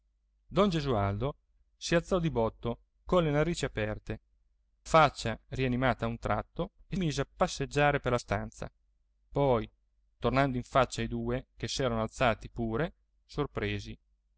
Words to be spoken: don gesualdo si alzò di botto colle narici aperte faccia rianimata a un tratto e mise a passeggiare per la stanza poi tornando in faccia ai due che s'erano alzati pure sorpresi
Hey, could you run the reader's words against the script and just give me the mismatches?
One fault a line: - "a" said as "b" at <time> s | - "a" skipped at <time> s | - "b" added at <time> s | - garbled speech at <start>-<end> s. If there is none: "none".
none